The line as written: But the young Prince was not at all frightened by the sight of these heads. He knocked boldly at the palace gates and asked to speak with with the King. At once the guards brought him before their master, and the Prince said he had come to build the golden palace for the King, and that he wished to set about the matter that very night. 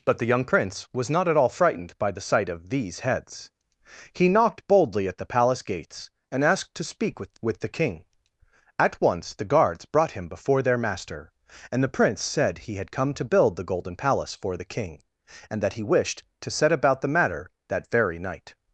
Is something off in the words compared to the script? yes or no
no